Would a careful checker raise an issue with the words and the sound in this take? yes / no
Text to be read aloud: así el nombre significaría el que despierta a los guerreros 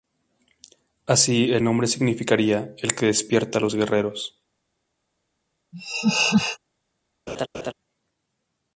yes